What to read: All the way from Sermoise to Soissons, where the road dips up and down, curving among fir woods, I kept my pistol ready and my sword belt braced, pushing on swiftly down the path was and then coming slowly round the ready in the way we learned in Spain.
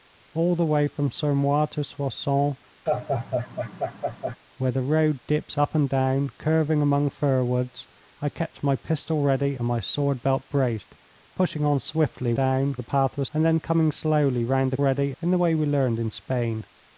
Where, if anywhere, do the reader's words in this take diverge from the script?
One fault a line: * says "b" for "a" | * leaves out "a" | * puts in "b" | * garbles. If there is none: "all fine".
all fine